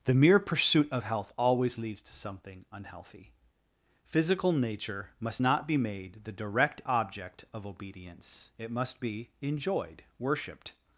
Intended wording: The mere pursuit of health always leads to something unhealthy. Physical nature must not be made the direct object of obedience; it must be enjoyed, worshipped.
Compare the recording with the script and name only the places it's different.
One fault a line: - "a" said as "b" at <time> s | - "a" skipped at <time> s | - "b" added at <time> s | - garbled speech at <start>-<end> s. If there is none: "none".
none